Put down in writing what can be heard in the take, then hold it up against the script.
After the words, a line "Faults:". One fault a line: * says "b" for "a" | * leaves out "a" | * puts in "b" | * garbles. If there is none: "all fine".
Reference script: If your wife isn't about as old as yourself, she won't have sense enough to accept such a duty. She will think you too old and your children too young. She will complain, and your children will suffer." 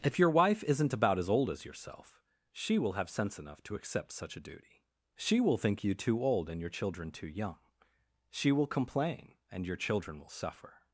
If your wife isn't about as old as yourself, she will have sense enough to accept such a duty. She will think you too old and your children too young. She will complain, and your children will suffer."
Faults:
* says "will" for "won't"